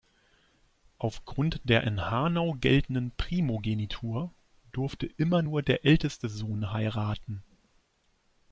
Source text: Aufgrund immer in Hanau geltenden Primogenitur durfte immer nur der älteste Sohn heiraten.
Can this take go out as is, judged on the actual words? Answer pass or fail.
fail